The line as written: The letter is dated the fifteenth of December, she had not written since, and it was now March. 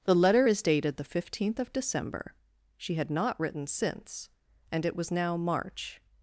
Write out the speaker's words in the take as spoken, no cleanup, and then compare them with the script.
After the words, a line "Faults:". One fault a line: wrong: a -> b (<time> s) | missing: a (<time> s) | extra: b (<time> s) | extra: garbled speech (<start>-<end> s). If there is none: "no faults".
The letter is dated the fifteenth of December, she had not written since, and it was now March.
Faults:
no faults